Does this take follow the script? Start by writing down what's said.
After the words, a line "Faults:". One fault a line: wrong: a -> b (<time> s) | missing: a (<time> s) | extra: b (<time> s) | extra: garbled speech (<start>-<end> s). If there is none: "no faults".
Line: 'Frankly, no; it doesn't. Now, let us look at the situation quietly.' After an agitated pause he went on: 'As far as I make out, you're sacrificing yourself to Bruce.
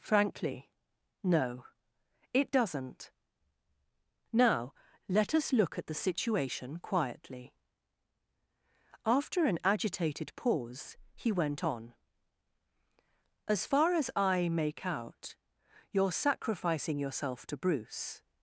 'Frankly, no; it doesn't. Now, let us look at the situation quietly.' After an agitated pause he went on: 'As far as I make out, you're sacrificing yourself to Bruce.
Faults:
no faults